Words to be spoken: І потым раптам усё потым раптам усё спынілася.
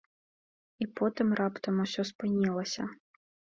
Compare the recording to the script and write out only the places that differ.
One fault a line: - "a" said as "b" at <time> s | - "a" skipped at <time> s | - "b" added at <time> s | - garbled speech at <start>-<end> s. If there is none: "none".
- "потым раптам усё" skipped at 2.0 s